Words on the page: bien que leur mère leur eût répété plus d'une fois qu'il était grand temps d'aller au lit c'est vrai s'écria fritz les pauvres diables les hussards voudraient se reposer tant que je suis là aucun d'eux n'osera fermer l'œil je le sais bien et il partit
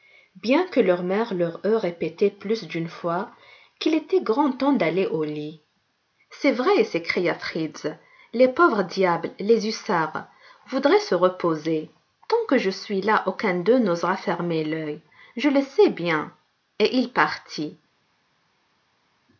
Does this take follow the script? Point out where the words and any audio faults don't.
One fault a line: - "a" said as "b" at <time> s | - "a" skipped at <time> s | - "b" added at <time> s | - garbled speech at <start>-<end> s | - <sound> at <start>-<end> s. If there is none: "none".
none